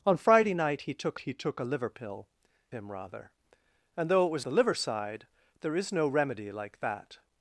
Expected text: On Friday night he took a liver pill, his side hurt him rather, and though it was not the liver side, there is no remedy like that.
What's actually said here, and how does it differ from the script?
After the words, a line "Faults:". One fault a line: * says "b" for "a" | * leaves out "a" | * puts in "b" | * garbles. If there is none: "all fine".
On Friday night he took he took a liver pill, him rather, and though it was the liver side, there is no remedy like that.
Faults:
* puts in "he took"
* leaves out "his side hurt"
* leaves out "not"